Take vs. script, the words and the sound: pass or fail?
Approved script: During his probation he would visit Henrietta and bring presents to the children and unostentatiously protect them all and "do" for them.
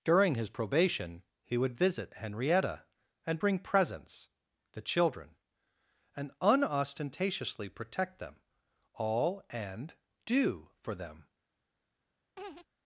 fail